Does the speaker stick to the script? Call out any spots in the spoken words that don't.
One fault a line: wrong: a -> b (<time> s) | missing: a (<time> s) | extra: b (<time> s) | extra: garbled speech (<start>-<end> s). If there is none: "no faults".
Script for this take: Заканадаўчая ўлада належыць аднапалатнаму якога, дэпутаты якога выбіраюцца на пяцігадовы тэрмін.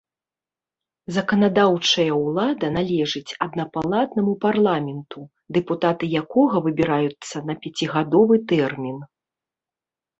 wrong: якога -> парламенту (4.5 s)